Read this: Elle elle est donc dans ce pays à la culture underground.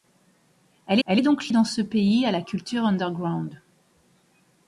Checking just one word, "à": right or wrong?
right